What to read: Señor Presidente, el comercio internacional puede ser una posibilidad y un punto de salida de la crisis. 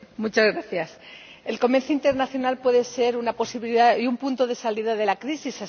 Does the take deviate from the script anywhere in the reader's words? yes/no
no